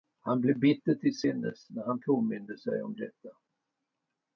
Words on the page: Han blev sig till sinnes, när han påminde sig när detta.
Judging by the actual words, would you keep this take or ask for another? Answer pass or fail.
fail